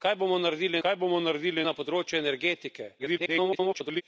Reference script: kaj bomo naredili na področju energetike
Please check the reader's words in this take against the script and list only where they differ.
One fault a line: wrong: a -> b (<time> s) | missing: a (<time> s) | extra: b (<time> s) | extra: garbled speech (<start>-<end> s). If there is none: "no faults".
extra: kaj bomo naredili (0.8 s)
extra: garbled speech (3.0-4.0 s)